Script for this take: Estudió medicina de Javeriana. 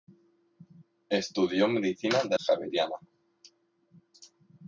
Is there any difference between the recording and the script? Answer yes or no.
no